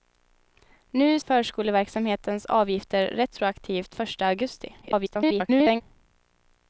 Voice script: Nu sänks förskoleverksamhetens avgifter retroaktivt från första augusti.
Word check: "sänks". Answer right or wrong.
wrong